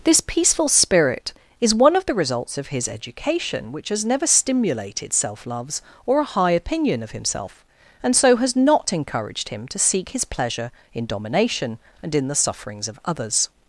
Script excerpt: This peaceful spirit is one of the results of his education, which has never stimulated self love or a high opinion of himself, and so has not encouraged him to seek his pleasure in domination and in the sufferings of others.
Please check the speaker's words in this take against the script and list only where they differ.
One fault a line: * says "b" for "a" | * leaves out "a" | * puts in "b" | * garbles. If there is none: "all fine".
* says "loves" for "love"